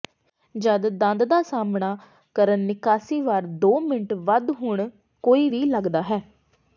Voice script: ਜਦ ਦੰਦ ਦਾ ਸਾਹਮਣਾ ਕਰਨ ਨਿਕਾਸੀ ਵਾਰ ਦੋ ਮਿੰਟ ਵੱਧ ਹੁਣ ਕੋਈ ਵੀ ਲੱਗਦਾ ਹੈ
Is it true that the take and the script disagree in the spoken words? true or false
false